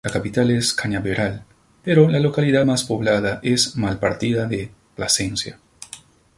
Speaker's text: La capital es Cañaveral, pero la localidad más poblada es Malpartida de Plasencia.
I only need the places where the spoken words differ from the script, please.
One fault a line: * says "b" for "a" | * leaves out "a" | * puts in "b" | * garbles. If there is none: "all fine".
all fine